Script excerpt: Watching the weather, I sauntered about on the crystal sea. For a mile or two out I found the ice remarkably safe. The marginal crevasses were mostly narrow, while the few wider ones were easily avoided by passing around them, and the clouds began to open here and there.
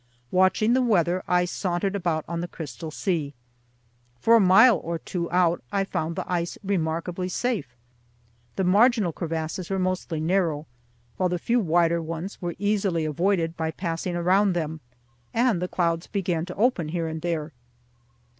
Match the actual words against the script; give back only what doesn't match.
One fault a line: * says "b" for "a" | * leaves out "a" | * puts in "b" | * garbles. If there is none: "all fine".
all fine